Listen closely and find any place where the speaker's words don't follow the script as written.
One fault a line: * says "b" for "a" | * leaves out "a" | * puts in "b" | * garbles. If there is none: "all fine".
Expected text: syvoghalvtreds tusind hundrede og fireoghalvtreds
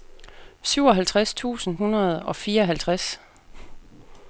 all fine